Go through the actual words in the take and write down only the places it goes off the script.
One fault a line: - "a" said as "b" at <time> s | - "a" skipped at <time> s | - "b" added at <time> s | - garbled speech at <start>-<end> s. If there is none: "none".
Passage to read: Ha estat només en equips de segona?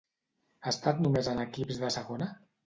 none